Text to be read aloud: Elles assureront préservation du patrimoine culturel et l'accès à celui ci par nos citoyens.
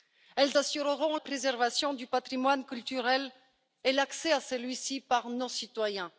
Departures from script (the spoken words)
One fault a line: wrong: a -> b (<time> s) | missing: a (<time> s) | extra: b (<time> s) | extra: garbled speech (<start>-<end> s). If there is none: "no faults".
no faults